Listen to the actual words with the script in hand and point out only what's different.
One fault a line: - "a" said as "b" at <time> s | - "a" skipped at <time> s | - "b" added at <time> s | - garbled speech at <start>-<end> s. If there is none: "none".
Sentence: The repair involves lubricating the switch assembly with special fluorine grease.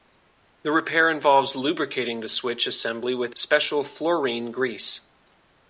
none